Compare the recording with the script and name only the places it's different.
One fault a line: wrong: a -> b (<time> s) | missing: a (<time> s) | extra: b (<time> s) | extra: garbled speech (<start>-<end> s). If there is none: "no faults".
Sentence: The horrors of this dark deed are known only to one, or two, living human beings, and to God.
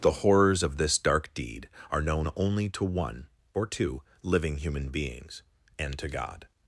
no faults